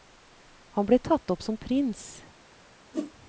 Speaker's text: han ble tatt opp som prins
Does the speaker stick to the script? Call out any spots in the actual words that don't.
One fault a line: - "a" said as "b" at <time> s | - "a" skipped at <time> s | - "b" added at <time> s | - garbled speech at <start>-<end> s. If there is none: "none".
none